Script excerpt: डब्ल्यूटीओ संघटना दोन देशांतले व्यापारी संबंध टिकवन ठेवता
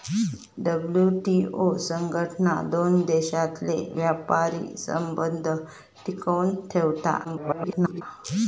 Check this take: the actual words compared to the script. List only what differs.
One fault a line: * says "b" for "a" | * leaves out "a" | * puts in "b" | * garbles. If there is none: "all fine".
* garbles